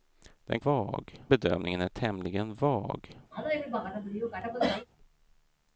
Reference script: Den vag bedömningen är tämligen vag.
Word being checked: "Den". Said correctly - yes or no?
yes